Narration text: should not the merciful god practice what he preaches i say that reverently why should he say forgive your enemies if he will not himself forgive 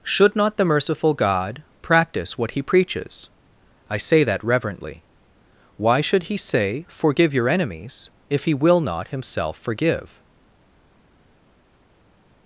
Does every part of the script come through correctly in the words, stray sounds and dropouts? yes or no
yes